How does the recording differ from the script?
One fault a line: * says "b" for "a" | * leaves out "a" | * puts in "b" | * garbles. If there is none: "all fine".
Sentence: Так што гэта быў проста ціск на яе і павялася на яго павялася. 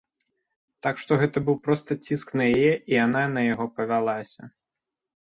* says "яна" for "павялася"